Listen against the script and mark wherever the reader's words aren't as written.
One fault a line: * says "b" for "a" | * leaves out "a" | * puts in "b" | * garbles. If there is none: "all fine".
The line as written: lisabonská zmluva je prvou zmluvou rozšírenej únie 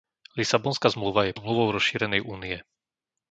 * leaves out "prvou"